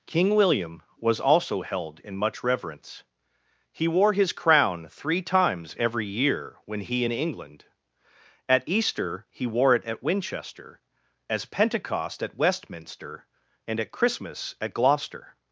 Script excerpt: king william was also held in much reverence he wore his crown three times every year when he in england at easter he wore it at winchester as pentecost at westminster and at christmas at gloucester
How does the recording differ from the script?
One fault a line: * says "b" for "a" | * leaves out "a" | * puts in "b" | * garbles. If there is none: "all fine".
all fine